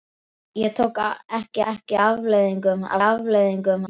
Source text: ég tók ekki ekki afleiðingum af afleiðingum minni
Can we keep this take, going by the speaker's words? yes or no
yes